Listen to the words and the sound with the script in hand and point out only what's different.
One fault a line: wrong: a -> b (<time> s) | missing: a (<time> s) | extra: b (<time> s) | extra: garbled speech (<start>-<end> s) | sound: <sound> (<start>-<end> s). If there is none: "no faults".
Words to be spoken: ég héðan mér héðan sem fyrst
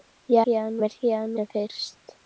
no faults